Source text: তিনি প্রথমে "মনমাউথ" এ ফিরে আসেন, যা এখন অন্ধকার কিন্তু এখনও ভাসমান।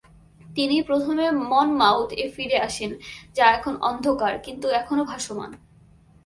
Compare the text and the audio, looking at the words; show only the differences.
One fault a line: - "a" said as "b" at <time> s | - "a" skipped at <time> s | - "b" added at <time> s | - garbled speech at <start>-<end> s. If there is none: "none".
none